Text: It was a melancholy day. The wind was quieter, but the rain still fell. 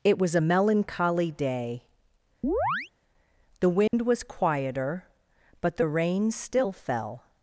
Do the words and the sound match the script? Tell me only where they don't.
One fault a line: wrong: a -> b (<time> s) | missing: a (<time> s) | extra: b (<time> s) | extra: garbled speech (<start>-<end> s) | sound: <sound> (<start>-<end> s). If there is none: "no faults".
sound: chirp (2.4-2.9 s)
sound: dropout (3.9-3.9 s)